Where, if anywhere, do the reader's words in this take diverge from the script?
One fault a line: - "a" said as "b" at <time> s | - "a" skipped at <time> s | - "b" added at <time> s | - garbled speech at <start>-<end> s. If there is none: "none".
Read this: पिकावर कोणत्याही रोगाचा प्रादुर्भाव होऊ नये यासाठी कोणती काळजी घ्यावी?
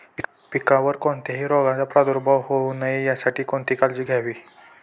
none